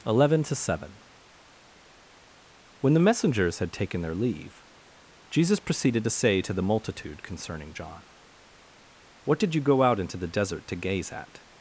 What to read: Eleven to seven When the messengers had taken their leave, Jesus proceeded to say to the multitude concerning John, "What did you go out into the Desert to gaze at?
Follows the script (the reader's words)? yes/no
yes